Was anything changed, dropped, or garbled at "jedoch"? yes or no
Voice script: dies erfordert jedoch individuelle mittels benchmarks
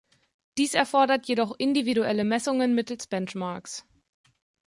no